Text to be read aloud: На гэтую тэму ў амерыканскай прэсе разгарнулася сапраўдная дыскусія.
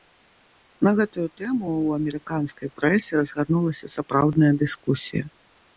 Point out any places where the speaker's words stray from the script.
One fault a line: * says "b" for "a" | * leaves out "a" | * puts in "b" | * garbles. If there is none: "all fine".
all fine